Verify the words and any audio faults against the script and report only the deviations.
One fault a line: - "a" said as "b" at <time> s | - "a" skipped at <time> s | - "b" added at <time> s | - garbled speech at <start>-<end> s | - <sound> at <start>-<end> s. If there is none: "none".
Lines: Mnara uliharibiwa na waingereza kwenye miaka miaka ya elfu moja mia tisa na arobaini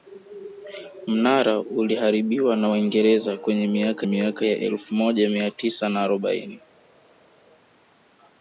none